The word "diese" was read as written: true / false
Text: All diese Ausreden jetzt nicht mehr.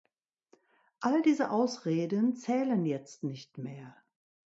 true